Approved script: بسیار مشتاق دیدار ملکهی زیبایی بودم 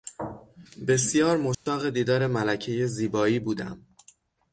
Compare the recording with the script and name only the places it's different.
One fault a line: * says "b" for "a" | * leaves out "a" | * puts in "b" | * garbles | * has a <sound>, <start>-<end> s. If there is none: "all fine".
* has a dropout, 1.5-1.7 s